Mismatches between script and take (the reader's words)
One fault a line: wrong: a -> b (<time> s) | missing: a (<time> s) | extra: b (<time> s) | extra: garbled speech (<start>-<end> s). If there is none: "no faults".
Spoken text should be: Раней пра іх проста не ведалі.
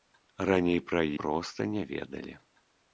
missing: іх (1.0 s)